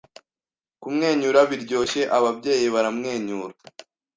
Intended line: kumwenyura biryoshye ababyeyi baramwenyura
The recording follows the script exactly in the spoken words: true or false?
true